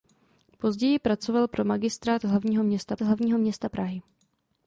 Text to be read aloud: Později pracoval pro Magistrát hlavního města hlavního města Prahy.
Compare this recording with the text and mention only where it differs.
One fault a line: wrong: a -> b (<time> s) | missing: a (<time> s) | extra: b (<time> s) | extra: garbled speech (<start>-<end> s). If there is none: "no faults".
no faults